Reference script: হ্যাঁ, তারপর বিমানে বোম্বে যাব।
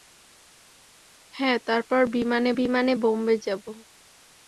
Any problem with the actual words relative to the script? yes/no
yes